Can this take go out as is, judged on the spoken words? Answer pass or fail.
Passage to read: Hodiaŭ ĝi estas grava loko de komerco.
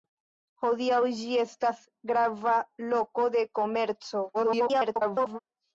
fail